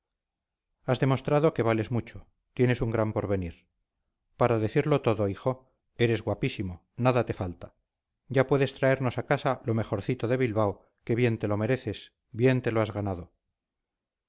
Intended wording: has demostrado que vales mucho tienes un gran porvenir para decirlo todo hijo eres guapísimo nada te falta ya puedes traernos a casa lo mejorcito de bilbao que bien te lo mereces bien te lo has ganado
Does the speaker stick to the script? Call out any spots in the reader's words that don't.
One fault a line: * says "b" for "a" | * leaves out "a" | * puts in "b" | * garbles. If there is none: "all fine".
all fine